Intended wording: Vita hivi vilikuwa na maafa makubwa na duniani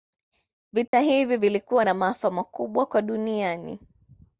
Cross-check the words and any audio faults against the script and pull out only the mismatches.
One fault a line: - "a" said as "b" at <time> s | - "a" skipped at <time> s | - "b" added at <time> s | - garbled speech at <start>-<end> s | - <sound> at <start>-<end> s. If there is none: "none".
- dropout at 0.9-0.9 s
- "na" said as "kwa" at 2.8 s